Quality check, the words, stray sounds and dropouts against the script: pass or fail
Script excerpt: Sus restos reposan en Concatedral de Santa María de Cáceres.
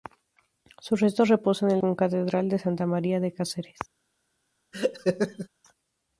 fail